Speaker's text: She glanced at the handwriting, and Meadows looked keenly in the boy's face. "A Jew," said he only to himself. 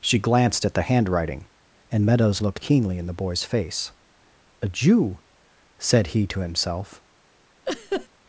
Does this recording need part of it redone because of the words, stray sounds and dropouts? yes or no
yes